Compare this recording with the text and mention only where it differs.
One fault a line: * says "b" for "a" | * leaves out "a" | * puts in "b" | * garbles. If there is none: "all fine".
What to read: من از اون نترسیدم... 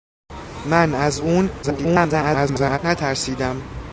* garbles